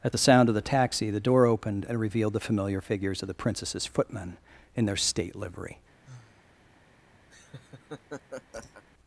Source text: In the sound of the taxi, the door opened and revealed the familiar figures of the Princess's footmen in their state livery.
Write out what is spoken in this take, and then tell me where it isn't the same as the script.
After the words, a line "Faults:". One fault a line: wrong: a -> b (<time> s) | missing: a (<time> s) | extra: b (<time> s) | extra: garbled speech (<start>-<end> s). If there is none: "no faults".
At the sound of the taxi, the door opened and revealed the familiar figures of the Princess's footmen in their state livery.
Faults:
wrong: In -> At (0.0 s)